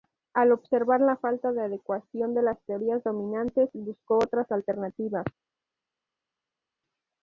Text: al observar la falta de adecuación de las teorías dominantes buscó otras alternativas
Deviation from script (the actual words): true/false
false